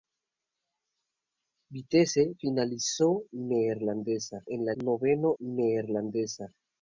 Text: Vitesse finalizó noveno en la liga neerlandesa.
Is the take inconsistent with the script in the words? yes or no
yes